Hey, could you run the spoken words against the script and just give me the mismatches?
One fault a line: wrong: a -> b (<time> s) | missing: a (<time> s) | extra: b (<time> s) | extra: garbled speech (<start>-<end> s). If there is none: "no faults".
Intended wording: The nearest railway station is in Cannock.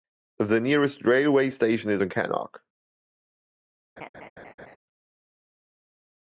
no faults